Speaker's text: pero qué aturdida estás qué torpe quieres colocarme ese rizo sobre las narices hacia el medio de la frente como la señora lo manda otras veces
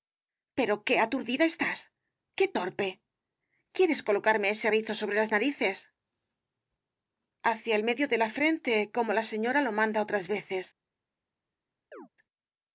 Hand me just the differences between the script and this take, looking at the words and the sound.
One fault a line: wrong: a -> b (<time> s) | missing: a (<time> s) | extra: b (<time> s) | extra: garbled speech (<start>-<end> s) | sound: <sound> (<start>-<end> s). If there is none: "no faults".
sound: chirp (11.9-12.1 s)